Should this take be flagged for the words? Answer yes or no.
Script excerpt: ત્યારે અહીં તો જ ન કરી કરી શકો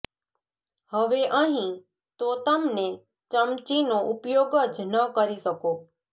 yes